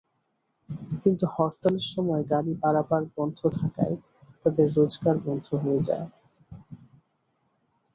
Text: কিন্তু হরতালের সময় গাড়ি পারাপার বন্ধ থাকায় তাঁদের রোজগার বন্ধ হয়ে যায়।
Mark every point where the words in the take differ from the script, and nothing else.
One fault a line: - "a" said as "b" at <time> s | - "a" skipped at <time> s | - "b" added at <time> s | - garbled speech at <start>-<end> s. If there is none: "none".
none